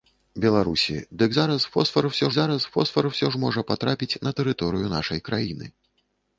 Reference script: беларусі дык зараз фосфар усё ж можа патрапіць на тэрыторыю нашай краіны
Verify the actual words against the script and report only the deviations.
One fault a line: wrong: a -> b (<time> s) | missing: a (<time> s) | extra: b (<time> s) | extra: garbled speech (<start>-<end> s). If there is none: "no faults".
extra: зараз фосфар усё (2.4 s)